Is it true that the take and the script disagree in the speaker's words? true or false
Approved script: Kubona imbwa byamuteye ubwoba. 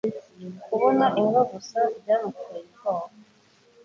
true